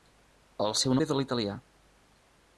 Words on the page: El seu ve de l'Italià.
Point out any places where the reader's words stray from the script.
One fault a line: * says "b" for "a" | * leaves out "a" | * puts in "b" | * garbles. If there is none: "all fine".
all fine